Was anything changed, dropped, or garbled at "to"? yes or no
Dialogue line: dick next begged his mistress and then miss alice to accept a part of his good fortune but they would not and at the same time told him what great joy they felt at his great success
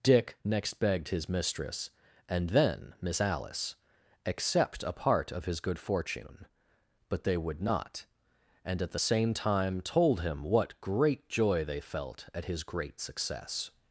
yes